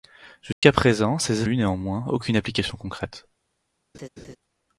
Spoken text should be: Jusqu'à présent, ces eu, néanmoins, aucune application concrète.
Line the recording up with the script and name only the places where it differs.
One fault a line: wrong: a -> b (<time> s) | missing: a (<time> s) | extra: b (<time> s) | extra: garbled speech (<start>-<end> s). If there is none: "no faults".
no faults